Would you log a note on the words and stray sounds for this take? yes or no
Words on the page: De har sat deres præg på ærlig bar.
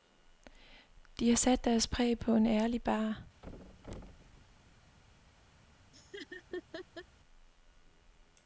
yes